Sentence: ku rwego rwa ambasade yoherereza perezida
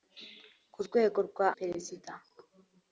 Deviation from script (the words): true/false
true